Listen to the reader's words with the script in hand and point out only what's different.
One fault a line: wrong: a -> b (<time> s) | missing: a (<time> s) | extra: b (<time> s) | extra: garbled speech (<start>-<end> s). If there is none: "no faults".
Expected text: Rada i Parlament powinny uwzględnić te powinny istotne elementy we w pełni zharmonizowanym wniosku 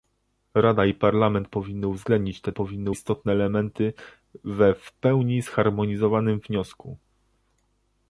no faults